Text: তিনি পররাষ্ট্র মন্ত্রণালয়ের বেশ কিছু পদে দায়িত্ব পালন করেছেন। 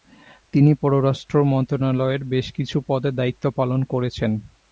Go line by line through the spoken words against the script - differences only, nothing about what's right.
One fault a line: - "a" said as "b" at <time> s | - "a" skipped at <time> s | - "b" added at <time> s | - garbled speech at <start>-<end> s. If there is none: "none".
none